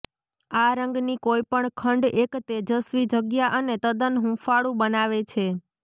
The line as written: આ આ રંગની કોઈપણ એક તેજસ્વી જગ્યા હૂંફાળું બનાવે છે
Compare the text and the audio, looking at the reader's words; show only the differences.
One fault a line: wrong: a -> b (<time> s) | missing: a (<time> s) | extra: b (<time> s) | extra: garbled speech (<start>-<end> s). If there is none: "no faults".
missing: આ (0.7 s)
extra: ખંડ (1.7 s)
extra: અને તદ્દન (3.6 s)